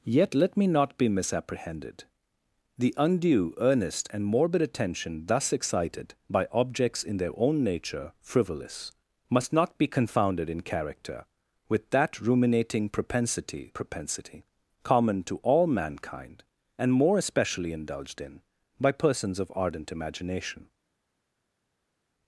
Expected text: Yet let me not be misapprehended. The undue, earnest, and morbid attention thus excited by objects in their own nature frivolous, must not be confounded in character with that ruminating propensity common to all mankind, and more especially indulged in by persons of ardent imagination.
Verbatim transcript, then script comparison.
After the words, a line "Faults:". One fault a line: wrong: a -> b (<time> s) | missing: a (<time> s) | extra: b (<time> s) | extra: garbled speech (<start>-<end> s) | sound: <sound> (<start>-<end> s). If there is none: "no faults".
Yet let me not be misapprehended. The undue, earnest, and morbid attention thus excited by objects in their own nature frivolous, must not be confounded in character with that ruminating propensity propensity common to all mankind, and more especially indulged in by persons of ardent imagination.
Faults:
extra: propensity (13.7 s)